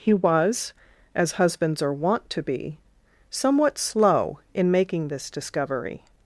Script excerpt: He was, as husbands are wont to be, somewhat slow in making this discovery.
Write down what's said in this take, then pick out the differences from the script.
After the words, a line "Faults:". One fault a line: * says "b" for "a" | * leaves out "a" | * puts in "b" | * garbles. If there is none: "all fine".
He was, as husbands are wont to be, somewhat slow in making this discovery.
Faults:
all fine